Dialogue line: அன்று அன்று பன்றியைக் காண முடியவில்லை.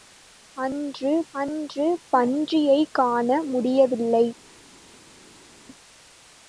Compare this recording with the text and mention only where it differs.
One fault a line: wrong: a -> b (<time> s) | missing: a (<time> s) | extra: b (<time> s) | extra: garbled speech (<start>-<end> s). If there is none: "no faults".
no faults